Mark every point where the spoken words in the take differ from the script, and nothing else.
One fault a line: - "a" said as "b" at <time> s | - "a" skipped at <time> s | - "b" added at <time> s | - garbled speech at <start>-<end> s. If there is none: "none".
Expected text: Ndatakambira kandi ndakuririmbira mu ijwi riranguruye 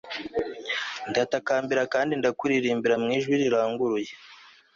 none